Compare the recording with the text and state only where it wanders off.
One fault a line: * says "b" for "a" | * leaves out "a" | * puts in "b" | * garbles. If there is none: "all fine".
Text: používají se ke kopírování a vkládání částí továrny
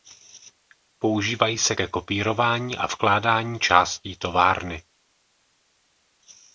all fine